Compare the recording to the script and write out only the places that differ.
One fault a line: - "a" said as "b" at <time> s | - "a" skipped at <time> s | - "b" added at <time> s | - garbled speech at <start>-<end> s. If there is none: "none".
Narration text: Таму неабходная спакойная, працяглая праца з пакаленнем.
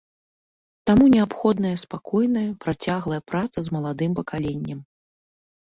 - "маладым" added at 3.8 s